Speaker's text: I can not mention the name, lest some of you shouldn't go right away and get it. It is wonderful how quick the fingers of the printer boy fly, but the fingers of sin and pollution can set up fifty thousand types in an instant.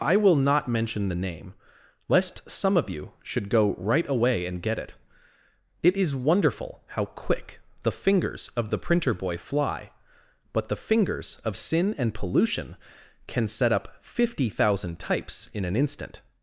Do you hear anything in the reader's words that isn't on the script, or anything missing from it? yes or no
yes